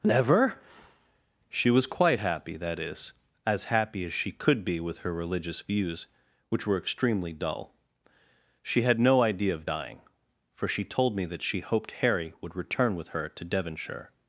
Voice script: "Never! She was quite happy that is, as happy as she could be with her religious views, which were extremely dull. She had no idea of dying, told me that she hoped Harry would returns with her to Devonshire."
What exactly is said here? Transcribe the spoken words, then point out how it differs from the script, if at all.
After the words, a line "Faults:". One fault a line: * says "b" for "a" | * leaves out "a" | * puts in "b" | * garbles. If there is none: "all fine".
"Never! She was quite happy that is, as happy as she could be with her religious views, which were extremely dull. She had no idea of dying, for she told me that she hoped Harry would return with her to Devonshire."
Faults:
* puts in "for she"
* says "return" for "returns"